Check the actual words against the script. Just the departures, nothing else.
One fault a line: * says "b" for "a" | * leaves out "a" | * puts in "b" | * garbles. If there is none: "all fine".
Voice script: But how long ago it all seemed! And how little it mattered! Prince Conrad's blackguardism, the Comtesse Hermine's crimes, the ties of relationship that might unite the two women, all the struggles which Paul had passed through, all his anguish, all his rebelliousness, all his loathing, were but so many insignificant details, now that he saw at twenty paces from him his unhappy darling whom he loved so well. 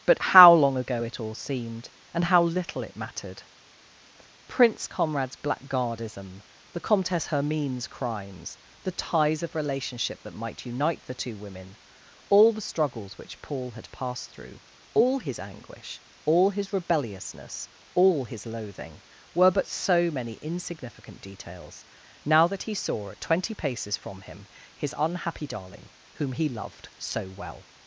all fine